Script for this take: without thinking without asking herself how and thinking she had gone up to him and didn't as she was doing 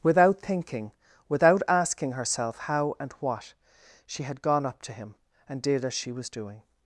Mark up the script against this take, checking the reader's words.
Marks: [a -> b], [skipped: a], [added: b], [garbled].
without thinking without asking herself how and [thinking -> what] she had gone up to him and [didn't -> did] as she was doing